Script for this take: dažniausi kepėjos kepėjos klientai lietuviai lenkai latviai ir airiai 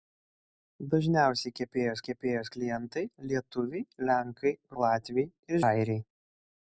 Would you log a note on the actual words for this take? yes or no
no